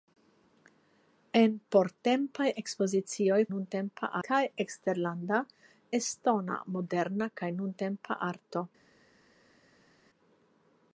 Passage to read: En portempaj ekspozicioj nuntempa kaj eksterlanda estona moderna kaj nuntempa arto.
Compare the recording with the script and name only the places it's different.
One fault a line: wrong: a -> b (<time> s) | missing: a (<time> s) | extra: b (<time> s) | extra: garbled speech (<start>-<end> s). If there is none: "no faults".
no faults